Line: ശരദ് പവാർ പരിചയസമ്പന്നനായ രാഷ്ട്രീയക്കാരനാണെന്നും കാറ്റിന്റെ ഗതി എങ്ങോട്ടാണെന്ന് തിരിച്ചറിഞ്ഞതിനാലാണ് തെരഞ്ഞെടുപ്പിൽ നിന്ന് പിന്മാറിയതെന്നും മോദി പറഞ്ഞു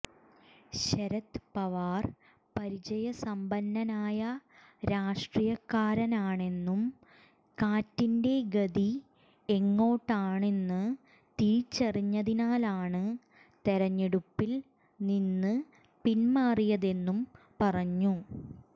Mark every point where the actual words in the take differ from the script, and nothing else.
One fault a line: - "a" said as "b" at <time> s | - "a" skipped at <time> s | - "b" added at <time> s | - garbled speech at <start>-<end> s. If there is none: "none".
- "മോദി" skipped at 17.2 s